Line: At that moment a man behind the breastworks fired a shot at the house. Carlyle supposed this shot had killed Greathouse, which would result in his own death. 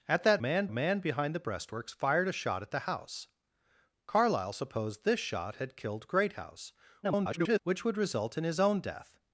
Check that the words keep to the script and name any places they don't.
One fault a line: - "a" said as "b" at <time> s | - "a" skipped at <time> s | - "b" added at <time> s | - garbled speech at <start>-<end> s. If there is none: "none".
- "moment" said as "man" at 0.4 s
- garbled speech at 7.0-7.6 s